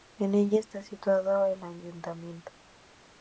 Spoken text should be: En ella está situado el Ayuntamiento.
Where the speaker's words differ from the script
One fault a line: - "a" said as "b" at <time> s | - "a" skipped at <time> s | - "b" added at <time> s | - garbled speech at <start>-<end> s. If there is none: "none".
none